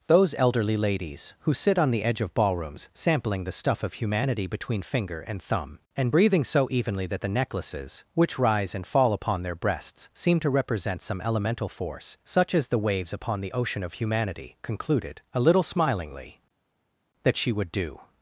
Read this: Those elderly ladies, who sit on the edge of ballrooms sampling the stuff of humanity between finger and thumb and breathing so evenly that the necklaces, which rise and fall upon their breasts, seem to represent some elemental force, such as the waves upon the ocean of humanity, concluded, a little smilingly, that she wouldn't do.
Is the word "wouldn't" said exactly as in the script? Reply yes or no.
no